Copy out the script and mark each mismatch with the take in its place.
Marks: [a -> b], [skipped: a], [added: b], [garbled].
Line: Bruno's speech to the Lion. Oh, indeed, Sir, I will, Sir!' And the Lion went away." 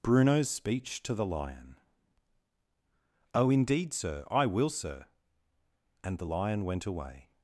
Bruno's speech to the Lion. Oh, indeed, Sir, I will, Sir!' And the Lion went away."